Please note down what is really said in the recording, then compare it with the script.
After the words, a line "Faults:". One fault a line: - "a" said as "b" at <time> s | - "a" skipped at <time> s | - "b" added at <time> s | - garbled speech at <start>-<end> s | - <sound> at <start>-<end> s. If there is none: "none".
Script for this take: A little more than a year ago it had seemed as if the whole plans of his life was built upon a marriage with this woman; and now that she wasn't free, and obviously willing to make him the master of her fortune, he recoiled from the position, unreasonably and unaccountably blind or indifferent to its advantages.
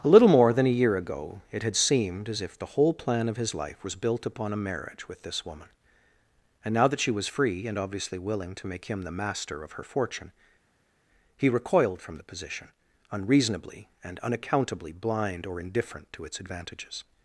A little more than a year ago it had seemed as if the whole plan of his life was built upon a marriage with this woman; and now that she was free, and obviously willing to make him the master of her fortune, he recoiled from the position, unreasonably and unaccountably blind or indifferent to its advantages.
Faults:
- "plans" said as "plan" at 2.9 s
- "wasn't" said as "was" at 7.1 s